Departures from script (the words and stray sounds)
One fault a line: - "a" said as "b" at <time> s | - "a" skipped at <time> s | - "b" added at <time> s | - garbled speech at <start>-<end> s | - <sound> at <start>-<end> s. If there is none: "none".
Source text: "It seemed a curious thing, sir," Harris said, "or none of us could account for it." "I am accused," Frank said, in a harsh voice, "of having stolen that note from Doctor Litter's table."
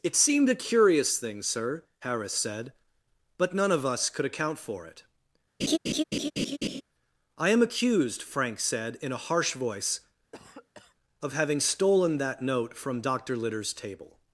- "or" said as "but" at 3.4 s
- laugh at 5.6-6.8 s
- cough at 10.3-10.9 s